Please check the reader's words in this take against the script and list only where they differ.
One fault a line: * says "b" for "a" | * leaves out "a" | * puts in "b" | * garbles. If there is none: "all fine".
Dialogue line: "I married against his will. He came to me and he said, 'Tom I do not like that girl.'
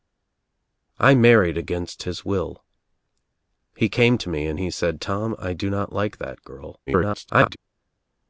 * garbles